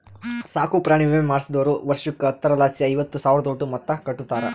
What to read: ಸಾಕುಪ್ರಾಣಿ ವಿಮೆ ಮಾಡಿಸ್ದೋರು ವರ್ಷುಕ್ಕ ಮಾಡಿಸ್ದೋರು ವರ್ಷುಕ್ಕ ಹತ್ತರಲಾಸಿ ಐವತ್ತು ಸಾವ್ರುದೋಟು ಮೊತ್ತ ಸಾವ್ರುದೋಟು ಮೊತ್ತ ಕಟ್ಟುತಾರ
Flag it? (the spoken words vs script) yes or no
yes